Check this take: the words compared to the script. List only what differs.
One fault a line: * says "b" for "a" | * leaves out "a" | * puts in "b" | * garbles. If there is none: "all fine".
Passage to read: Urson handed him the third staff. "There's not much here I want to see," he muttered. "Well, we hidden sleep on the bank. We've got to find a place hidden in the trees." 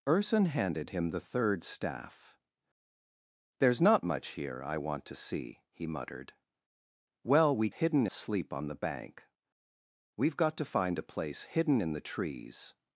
all fine